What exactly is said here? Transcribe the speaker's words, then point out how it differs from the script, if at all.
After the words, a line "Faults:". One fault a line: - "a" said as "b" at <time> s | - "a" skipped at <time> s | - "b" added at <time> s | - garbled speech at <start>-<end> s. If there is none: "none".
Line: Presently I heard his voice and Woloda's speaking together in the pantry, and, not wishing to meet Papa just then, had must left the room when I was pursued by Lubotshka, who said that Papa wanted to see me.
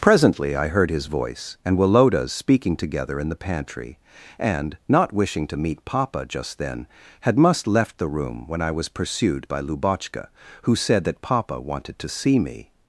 Presently I heard his voice and Woloda's speaking together in the pantry, and, not wishing to meet Papa just then, had must left the room when I was pursued by Lubotshka, who said that Papa wanted to see me.
Faults:
none